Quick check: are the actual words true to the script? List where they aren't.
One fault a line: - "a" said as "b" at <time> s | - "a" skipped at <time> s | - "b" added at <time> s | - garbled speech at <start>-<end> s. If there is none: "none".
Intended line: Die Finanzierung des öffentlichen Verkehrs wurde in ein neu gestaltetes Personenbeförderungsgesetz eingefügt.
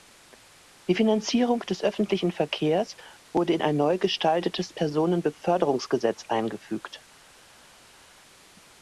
none